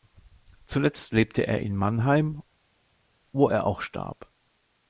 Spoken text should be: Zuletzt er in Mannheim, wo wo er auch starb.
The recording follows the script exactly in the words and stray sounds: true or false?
false